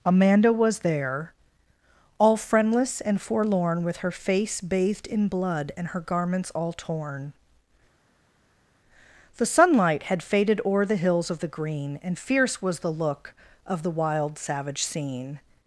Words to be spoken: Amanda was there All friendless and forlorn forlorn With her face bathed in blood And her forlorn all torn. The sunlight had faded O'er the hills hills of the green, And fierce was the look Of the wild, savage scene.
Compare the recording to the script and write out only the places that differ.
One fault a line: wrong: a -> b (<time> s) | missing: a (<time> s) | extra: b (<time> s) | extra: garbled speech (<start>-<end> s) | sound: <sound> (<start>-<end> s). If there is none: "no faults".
missing: forlorn (3.8 s)
wrong: forlorn -> garments (6.0 s)
missing: hills (11.3 s)